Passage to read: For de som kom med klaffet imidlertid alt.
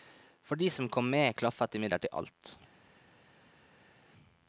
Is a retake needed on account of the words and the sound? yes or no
no